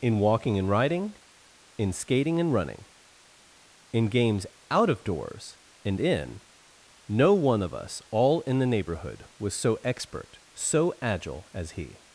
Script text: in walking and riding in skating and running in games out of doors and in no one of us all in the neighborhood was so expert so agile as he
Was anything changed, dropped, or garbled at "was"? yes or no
no